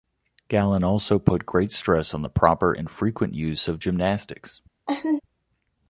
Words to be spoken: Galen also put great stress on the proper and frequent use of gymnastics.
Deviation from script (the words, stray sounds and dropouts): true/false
true